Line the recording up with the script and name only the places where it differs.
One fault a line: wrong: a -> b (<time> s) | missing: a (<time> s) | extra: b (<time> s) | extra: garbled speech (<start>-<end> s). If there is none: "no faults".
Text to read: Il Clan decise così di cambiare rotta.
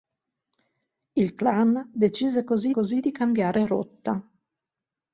extra: così (2.7 s)